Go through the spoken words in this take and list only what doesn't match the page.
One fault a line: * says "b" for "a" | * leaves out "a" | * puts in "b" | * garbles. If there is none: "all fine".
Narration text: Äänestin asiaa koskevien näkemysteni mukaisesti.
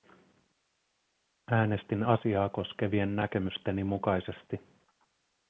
all fine